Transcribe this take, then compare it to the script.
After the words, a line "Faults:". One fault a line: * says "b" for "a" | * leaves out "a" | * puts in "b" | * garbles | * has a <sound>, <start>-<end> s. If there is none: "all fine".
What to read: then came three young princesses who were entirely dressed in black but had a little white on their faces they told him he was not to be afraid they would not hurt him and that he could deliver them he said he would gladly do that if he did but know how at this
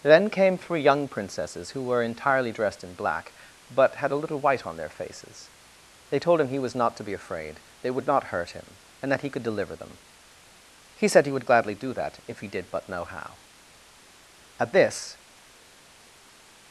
then came three young princesses who were entirely dressed in black but had a little white on their faces they told him he was not to be afraid they would not hurt him and that he could deliver them he said he would gladly do that if he did but know how at this
Faults:
all fine